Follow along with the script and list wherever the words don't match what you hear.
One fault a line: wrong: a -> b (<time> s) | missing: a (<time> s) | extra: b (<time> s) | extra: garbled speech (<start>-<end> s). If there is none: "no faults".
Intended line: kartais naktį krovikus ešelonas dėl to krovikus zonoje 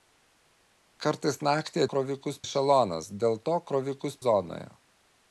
no faults